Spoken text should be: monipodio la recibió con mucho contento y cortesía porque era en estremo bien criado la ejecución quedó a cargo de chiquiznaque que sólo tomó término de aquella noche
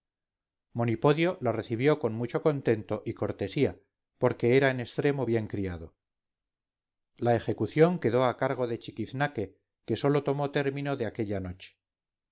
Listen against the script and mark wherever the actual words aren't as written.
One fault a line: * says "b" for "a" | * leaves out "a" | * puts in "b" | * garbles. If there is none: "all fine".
all fine